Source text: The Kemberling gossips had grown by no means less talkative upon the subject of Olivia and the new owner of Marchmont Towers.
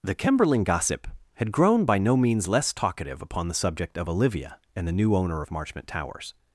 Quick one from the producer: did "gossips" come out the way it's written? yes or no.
no